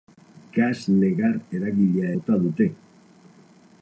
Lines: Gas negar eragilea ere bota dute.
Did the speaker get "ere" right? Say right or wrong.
wrong